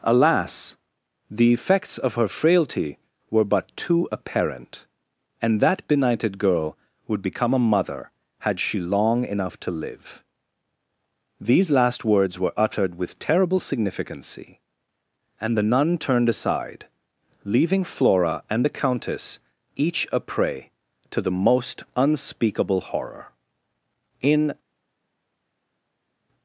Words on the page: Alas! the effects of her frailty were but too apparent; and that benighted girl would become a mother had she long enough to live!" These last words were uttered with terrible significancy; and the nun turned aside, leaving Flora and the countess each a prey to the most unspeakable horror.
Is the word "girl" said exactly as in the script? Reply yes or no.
yes